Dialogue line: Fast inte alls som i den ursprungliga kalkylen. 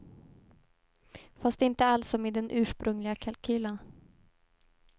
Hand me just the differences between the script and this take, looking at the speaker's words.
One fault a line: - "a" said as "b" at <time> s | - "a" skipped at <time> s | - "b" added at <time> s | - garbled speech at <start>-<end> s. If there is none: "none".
none